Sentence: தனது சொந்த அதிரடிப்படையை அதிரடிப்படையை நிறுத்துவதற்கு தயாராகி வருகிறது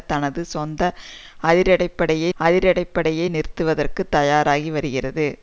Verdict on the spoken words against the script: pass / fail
pass